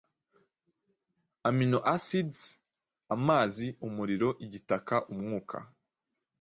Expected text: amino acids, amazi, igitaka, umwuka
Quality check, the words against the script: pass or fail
fail